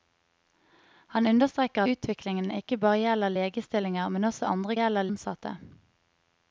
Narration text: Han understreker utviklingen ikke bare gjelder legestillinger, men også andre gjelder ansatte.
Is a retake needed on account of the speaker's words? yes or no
no